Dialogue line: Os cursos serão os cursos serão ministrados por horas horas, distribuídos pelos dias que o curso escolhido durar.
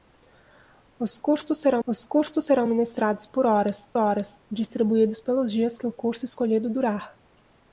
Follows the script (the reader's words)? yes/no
yes